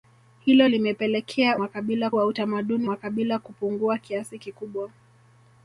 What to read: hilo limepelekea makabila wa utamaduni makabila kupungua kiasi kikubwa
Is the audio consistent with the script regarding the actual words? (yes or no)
yes